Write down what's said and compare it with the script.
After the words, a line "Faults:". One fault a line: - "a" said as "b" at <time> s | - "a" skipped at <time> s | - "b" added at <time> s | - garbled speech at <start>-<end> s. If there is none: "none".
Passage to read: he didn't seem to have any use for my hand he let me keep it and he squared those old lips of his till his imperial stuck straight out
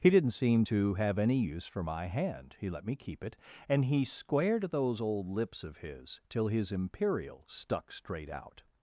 he didn't seem to have any use for my hand he let me keep it and he squared those old lips of his till his imperial stuck straight out
Faults:
none